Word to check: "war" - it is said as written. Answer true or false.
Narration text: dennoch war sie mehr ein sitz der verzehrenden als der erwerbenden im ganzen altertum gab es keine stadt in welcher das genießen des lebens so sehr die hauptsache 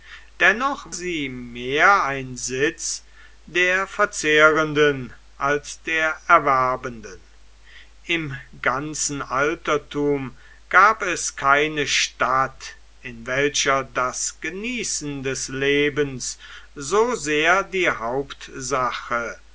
false